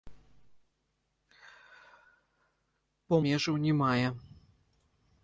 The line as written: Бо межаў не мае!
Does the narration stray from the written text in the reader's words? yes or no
no